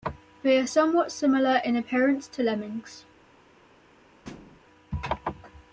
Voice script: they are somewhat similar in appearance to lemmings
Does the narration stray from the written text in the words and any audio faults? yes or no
yes